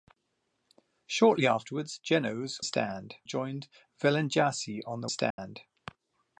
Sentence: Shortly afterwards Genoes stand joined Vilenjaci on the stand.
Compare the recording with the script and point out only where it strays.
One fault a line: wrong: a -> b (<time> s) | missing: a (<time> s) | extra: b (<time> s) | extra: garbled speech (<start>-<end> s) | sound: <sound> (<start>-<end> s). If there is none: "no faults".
sound: dropout (5.3-5.4 s)